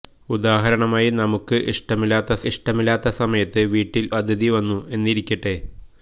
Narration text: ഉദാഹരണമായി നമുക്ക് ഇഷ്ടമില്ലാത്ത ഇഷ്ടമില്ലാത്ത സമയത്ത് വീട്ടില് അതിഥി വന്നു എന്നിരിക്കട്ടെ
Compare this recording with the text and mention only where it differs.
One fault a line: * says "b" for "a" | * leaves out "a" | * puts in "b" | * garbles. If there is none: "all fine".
all fine